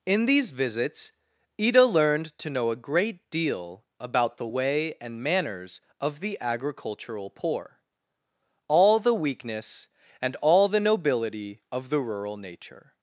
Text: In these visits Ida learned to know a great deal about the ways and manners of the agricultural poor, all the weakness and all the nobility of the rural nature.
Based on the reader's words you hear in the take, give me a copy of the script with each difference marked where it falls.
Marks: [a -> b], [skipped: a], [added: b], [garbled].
In these visits Ida learned to know a great deal about the [ways -> way] and manners of the agricultural poor, all the weakness and all the nobility of the rural nature.